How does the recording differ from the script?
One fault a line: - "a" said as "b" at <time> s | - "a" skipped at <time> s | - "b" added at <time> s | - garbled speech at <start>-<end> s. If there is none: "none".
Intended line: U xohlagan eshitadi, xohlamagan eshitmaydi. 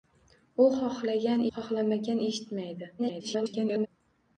- "eshitadi" skipped at 1.4 s
- garbled speech at 3.0-3.9 s